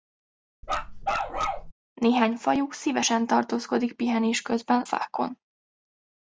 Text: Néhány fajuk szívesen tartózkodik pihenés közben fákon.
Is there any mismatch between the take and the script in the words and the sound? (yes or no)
yes